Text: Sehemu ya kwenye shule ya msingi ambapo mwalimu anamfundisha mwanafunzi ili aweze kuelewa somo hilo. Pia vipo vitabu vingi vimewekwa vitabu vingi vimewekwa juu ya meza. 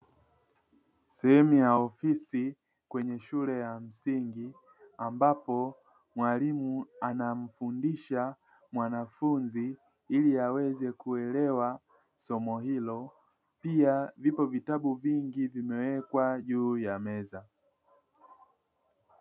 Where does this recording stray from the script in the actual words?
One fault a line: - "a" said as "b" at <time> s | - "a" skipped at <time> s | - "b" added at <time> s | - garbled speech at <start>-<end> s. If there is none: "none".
- "ofisi" added at 1.7 s
- "vitabu vingi vimewekwa" skipped at 16.4 s